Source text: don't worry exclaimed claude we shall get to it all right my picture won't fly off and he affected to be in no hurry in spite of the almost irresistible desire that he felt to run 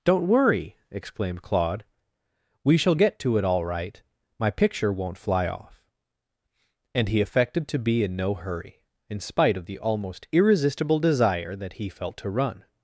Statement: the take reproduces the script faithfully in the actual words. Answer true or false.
true